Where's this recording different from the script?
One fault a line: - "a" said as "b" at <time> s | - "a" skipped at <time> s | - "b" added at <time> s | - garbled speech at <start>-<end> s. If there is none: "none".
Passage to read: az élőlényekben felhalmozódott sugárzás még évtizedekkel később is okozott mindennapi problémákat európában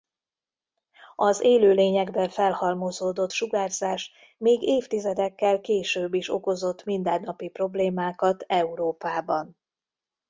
none